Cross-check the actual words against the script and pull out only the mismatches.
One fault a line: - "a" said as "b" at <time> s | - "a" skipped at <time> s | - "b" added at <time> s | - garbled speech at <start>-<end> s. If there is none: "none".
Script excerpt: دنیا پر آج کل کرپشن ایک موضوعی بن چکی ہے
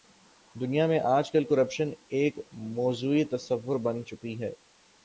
- "پر" said as "میں" at 0.9 s
- "تصور" added at 3.2 s